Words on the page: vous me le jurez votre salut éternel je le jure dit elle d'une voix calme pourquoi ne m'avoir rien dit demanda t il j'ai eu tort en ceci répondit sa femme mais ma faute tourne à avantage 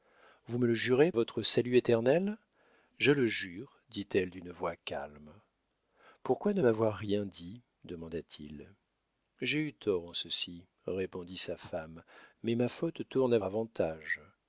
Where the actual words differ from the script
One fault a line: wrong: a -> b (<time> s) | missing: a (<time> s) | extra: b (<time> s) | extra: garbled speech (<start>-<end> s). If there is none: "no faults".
no faults